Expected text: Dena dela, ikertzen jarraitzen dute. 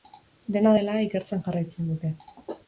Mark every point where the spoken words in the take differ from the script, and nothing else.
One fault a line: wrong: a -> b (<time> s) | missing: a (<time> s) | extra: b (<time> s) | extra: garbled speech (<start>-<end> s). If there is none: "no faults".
no faults